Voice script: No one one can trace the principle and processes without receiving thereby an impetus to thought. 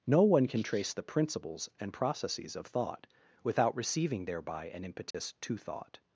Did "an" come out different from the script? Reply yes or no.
no